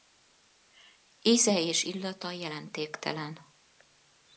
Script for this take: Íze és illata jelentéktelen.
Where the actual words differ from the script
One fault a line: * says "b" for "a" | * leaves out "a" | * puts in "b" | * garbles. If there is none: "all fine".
all fine